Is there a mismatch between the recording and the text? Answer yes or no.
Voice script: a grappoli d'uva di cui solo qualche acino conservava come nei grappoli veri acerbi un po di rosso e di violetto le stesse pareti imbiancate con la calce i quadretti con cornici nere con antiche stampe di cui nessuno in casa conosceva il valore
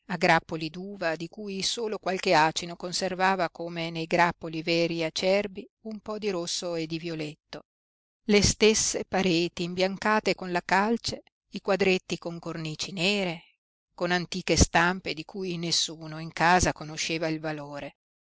no